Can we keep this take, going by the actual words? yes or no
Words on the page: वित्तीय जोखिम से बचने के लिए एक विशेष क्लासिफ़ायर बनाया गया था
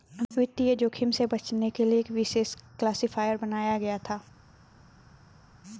yes